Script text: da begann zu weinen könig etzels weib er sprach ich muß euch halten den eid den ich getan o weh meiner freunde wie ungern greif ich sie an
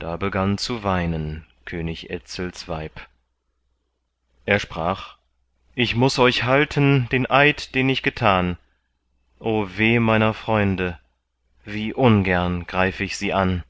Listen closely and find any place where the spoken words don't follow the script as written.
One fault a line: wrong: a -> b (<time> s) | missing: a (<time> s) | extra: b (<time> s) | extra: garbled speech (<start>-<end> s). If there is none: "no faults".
no faults